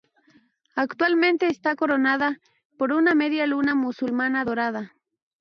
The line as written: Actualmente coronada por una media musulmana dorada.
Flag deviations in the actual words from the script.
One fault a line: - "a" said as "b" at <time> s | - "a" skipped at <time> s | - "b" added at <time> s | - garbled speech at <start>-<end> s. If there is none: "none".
- "está" added at 1.4 s
- "luna" added at 3.5 s